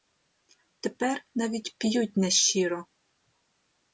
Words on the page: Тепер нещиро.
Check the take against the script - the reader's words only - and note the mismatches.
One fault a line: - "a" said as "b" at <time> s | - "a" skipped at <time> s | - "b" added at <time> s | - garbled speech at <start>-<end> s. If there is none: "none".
- "навіть п'ють" added at 1.4 s